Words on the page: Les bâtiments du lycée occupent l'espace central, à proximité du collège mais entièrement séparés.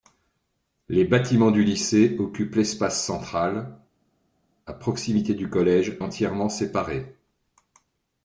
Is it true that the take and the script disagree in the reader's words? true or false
true